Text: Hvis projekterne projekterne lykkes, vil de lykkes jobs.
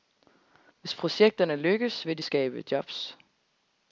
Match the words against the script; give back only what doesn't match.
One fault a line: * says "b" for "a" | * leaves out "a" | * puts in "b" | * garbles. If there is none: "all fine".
* leaves out "projekterne"
* says "skabe" for "lykkes"